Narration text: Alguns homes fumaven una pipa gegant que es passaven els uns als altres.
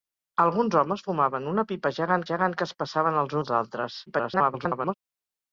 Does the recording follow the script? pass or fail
fail